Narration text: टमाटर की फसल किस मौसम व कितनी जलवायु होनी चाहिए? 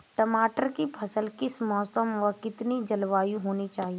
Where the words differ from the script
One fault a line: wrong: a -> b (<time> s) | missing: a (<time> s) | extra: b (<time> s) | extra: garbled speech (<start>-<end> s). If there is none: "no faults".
no faults